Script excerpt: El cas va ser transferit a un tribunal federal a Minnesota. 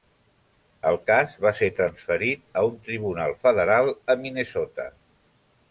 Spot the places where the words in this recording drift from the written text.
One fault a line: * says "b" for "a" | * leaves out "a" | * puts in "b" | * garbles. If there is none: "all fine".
all fine